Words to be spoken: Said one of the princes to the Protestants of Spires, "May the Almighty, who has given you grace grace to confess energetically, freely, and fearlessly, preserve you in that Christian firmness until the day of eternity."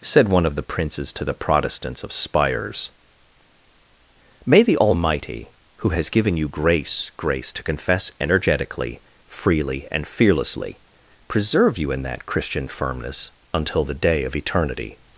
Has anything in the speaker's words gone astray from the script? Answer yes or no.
no